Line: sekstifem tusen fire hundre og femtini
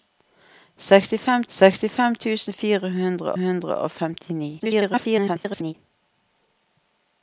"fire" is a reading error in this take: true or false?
false